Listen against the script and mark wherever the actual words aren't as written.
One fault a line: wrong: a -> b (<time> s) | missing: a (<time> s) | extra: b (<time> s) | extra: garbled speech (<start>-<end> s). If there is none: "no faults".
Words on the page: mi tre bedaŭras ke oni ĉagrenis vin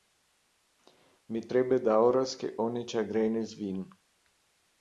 no faults